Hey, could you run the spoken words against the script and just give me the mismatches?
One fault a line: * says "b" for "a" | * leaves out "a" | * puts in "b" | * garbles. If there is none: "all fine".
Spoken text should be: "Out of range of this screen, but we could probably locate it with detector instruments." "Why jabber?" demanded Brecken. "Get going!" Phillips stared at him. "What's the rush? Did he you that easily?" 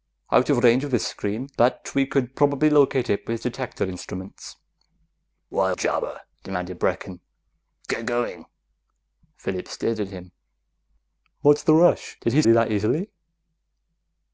all fine